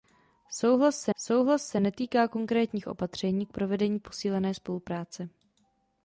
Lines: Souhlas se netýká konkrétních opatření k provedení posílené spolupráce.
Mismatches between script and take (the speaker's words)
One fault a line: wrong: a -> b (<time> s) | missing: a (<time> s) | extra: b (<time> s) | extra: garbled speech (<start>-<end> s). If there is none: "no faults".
extra: souhlas se (1.2 s)